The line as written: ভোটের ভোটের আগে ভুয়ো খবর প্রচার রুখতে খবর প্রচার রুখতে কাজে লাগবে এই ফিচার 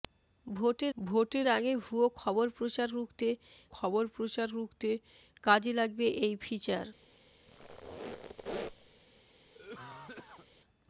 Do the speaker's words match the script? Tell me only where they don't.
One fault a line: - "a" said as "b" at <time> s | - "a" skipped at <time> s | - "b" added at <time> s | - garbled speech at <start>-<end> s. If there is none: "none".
none